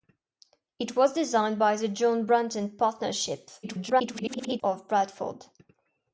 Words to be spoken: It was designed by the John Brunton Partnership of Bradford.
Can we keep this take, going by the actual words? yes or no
no